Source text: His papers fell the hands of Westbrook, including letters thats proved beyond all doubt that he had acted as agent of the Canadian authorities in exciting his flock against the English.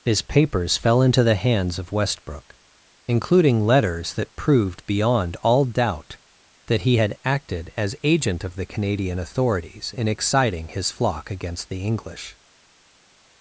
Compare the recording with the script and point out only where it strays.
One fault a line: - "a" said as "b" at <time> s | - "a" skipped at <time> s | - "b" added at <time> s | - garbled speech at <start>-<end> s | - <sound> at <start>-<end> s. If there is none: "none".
- "into" added at 1.0 s
- "thats" said as "that" at 4.2 s